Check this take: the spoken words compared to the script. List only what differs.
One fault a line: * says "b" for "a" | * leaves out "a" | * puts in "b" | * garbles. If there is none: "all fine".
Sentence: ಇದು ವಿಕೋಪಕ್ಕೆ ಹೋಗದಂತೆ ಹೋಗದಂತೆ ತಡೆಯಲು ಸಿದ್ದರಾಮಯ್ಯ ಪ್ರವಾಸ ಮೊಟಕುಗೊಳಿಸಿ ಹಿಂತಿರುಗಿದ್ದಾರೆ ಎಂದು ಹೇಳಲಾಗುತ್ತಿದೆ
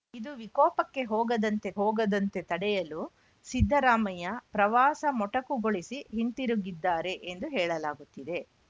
all fine